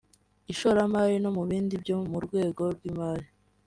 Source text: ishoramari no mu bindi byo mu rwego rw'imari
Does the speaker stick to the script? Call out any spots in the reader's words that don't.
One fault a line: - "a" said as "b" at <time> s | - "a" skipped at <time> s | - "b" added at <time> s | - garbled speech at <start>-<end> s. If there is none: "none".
none